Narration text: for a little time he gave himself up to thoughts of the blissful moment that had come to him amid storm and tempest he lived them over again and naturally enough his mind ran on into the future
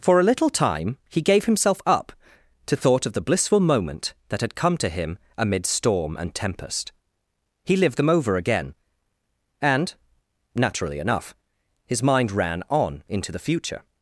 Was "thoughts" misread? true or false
true